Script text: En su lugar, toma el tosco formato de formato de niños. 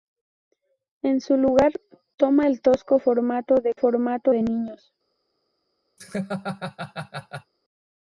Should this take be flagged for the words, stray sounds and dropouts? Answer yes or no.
yes